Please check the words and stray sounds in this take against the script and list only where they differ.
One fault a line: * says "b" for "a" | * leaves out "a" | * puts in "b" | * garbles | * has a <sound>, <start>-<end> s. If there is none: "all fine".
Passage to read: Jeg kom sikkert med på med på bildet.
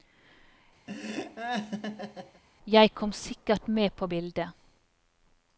* has a laugh, 0.9-2.4 s
* leaves out "med på"